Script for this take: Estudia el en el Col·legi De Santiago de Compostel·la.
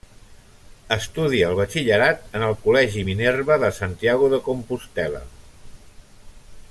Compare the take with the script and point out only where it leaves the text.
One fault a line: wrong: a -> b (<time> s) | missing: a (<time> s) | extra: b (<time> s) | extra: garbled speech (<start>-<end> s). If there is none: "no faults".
extra: batxillerat (1.6 s)
extra: Minerva (3.1 s)